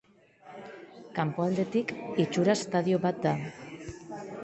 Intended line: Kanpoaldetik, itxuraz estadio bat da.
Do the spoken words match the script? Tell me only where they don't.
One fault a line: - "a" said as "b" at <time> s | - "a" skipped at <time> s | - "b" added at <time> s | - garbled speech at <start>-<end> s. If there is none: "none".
none